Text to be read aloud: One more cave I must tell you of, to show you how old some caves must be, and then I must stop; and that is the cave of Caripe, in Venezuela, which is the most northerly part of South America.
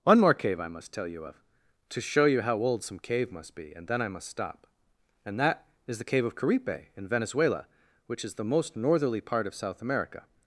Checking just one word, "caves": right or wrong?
wrong